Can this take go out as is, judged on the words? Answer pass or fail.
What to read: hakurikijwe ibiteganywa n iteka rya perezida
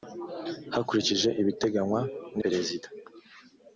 fail